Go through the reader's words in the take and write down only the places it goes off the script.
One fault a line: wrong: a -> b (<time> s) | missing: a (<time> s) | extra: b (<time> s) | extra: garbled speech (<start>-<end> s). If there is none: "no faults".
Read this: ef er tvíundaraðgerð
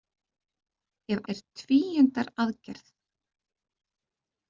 no faults